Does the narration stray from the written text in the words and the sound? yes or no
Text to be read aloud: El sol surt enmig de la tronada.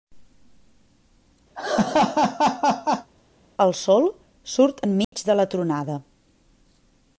yes